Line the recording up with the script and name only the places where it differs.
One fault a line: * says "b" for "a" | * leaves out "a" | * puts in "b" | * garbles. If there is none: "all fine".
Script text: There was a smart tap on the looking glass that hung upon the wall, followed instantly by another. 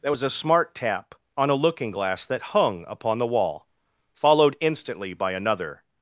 * says "a" for "the"